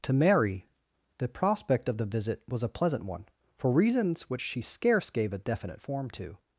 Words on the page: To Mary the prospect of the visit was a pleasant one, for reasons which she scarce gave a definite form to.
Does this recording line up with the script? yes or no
yes